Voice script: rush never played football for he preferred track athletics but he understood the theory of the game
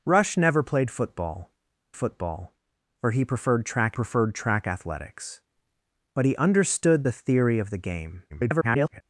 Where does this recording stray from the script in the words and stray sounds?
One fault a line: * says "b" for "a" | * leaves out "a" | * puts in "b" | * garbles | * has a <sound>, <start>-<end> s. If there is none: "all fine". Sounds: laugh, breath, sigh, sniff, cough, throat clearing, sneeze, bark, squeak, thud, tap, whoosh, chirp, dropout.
* puts in "football"
* puts in "preferred track"
* garbles